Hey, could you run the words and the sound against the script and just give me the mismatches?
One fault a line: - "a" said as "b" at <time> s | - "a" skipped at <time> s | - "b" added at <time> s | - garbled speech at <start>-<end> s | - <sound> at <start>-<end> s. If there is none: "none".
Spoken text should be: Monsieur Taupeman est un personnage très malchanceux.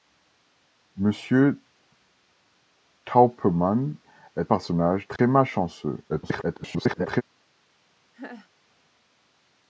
- "un" skipped at 4.5 s
- dropout at 5.2-5.2 s
- garbled speech at 6.1-7.2 s
- laugh at 8.1-8.5 s